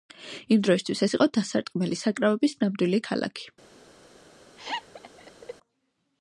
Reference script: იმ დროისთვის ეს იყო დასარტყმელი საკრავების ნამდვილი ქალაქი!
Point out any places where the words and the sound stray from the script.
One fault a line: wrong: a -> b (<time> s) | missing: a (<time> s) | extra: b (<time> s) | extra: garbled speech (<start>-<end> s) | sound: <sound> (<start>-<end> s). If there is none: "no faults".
sound: laugh (4.6-5.5 s)